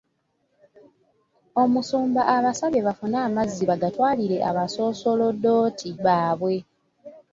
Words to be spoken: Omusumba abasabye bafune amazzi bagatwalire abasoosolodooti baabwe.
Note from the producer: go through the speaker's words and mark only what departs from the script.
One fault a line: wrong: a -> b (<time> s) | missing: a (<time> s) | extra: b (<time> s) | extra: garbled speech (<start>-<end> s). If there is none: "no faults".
no faults